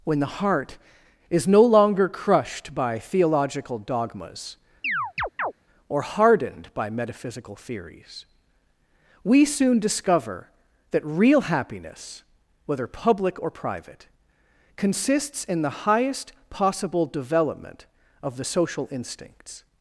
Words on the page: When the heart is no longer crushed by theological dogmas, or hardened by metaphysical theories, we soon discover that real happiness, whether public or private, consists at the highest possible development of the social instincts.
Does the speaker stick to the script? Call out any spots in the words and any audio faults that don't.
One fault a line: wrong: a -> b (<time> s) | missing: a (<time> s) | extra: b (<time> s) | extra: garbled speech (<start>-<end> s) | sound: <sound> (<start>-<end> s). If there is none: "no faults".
sound: chirp (4.8-5.5 s)
wrong: at -> in (15.4 s)